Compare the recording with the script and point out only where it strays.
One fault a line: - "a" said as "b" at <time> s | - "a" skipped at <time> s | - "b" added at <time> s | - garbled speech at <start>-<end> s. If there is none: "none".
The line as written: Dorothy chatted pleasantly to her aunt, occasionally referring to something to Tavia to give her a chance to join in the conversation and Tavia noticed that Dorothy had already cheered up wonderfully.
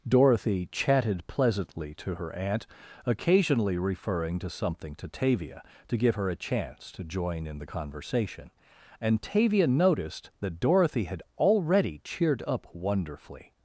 none